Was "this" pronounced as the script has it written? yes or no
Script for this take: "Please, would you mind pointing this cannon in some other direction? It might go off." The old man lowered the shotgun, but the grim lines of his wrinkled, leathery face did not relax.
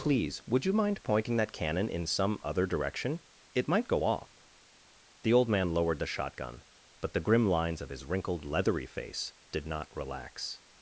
no